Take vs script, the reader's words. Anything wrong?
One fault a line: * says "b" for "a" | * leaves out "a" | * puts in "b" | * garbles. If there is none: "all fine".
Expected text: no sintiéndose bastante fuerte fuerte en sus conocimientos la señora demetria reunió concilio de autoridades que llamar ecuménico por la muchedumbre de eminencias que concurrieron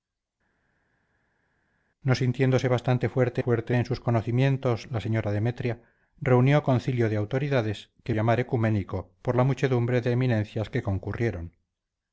all fine